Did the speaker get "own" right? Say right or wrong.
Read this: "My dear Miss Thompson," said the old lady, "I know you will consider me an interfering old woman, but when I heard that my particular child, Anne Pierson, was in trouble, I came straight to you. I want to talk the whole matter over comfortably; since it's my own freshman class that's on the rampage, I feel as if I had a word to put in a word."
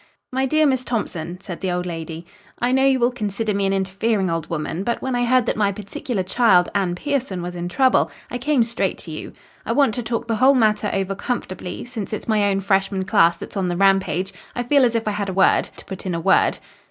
right